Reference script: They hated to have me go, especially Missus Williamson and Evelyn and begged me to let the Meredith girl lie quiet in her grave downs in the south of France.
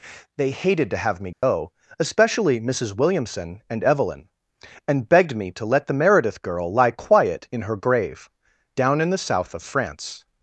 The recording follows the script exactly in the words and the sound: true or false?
false